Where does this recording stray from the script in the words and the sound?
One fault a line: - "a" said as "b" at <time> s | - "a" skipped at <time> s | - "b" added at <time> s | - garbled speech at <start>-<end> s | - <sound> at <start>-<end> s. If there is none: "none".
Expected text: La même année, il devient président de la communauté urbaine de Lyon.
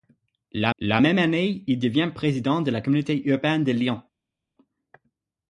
- "la" added at 0.8 s